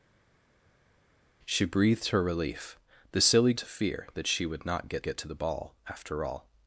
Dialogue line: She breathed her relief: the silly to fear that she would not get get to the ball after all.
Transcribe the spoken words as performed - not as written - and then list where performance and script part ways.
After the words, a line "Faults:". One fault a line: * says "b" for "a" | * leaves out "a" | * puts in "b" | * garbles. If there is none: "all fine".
She breathed her relief: the silly to fear that she would not get get to the ball after all.
Faults:
all fine